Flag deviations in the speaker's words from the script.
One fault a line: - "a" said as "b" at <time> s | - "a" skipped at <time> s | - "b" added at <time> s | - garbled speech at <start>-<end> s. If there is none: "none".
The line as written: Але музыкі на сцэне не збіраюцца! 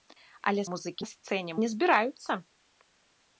none